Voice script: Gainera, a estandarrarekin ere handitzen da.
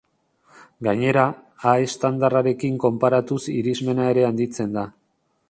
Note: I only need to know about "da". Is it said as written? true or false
true